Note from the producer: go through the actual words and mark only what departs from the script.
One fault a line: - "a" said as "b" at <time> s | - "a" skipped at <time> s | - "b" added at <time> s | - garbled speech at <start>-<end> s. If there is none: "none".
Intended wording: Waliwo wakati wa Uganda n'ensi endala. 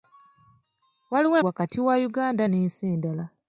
none